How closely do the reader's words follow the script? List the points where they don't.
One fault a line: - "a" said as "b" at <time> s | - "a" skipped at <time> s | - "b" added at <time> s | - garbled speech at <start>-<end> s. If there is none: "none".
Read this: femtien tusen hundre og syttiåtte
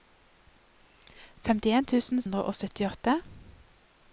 none